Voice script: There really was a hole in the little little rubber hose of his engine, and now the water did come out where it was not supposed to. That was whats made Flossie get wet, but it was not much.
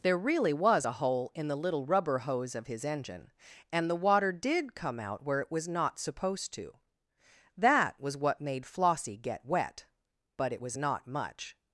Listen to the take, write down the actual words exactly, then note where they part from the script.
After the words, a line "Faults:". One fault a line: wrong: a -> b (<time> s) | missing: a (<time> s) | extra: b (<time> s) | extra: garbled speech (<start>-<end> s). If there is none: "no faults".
There really was a hole in the little rubber hose of his engine, and the water did come out where it was not supposed to. That was what made Flossie get wet, but it was not much.
Faults:
missing: little (1.8 s)
missing: now (3.9 s)
wrong: whats -> what (8.1 s)